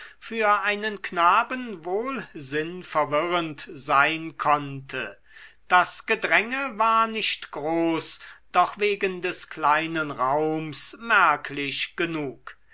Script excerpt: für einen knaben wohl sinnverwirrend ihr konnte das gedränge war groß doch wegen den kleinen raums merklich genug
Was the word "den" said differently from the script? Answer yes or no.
yes